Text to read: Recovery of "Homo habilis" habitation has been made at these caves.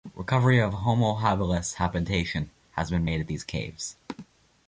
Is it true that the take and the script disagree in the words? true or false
false